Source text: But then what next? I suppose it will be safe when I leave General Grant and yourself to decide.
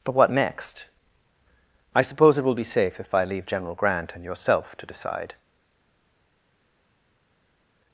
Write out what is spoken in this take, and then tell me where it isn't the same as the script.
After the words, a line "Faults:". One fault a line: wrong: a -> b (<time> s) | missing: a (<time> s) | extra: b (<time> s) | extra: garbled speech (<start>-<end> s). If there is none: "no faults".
But what next? I suppose it will be safe if I leave General Grant and yourself to decide.
Faults:
missing: then (0.1 s)
wrong: when -> if (3.0 s)